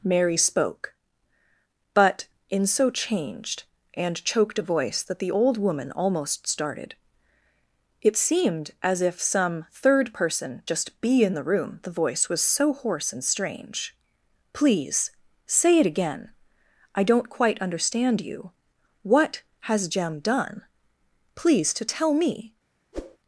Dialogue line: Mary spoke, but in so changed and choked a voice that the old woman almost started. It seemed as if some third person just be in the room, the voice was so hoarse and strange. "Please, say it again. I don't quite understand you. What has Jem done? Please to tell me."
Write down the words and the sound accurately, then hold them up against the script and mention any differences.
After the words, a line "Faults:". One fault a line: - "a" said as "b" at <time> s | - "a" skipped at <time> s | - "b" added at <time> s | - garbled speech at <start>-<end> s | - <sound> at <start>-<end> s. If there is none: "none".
Mary spoke, but in so changed and choked a voice that the old woman almost started. It seemed as if some third person just be in the room, the voice was so hoarse and strange. "Please, say it again. I don't quite understand you. What has Jem done? Please to tell me."
Faults:
- whoosh at 22.9-23.2 s